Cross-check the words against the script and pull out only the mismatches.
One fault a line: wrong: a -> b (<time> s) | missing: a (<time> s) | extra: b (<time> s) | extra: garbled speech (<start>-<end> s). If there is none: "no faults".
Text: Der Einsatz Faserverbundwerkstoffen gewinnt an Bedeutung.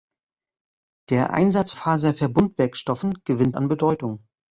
no faults